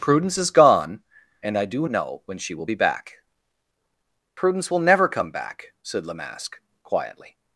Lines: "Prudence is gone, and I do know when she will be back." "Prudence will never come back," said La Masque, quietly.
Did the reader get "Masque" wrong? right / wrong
right